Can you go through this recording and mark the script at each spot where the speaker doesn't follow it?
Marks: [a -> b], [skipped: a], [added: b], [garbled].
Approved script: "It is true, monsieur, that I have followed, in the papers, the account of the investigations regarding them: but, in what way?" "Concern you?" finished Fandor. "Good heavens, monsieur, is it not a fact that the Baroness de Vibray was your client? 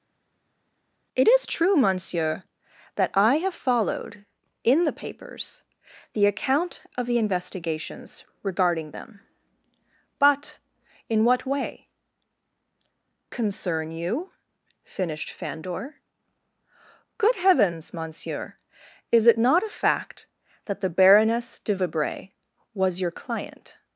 "It is true, monsieur, that I have followed, in the papers, the account of the investigations regarding them: but, in what way?" "Concern you?" finished Fandor. "Good heavens, monsieur, is it not a fact that the Baroness de Vibray was your client?